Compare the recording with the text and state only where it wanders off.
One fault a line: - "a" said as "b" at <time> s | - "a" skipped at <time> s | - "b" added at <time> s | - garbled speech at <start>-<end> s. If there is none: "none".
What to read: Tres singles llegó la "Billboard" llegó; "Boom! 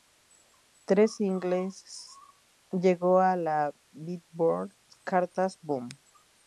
- "a" added at 3.2 s
- "llegó" said as "cartas" at 5.0 s